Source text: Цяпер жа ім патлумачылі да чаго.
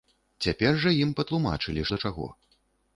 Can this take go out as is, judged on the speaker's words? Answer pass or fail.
pass